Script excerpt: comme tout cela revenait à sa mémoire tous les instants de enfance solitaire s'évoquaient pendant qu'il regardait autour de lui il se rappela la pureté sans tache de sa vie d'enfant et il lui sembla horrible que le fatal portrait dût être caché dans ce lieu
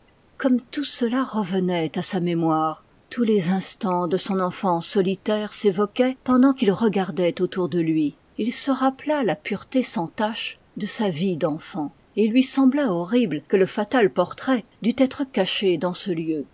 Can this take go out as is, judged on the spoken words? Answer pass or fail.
fail